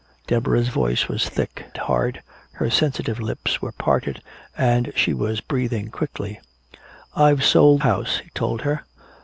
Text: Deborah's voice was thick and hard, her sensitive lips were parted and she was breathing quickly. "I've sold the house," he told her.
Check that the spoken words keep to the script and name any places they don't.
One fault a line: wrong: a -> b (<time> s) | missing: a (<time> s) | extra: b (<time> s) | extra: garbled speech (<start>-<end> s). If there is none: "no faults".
missing: and (1.7 s)
missing: the (7.8 s)